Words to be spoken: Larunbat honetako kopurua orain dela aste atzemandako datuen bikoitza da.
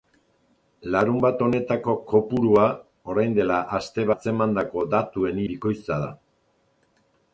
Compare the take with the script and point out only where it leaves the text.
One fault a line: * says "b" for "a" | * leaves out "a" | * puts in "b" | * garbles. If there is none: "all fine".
all fine